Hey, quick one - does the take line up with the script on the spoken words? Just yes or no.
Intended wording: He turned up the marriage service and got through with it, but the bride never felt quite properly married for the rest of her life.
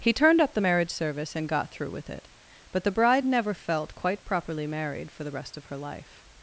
yes